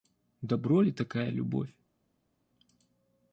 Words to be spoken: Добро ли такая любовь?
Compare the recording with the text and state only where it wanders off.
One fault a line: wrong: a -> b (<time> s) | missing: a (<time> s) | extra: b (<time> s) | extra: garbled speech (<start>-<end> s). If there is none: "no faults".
no faults